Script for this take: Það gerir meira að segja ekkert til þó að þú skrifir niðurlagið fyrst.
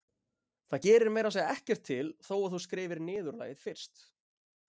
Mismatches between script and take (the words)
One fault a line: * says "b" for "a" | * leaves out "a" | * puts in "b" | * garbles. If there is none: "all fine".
all fine